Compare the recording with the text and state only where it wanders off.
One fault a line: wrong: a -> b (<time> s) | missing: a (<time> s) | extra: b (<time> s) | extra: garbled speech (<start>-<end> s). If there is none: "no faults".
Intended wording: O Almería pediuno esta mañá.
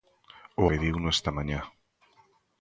missing: Almería (0.7 s)